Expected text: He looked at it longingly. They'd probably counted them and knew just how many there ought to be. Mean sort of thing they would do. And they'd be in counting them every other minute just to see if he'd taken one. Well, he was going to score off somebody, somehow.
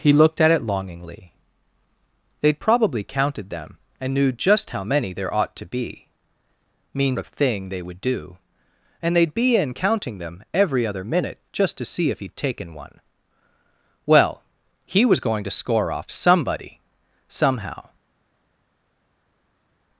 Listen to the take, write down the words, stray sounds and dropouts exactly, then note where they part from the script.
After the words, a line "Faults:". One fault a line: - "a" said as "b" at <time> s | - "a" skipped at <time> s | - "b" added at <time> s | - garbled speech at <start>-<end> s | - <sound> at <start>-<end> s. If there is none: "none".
He looked at it longingly. They'd probably counted them and knew just how many there ought to be. Mean of thing they would do. And they'd be in counting them every other minute just to see if he'd taken one. Well, he was going to score off somebody, somehow.
Faults:
- "sort" skipped at 7.2 s